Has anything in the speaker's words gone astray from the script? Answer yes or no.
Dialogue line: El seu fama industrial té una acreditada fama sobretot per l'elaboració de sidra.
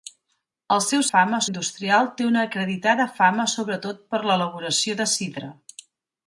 no